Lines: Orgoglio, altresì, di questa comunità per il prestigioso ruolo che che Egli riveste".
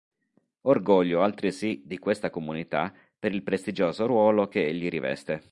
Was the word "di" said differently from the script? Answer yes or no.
no